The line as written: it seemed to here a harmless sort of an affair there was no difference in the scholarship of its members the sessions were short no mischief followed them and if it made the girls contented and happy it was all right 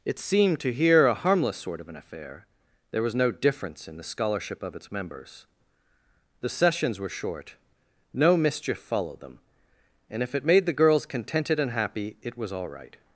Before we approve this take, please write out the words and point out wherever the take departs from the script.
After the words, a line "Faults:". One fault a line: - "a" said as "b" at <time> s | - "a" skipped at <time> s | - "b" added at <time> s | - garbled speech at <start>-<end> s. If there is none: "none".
it seemed to here a harmless sort of an affair there was no difference in the scholarship of its members the sessions were short no mischief followed them and if it made the girls contented and happy it was all right
Faults:
none